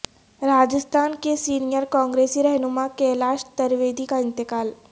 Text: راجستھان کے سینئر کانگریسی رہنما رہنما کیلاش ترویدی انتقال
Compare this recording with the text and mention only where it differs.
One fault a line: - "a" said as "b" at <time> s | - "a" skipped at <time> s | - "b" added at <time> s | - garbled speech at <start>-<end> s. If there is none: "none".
- "رہنما" skipped at 2.9 s
- "کا" added at 4.0 s